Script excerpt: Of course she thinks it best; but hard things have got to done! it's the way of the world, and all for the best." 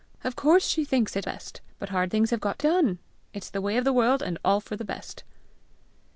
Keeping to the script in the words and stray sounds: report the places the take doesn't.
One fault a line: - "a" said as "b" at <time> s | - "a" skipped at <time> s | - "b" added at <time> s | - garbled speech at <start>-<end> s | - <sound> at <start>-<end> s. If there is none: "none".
none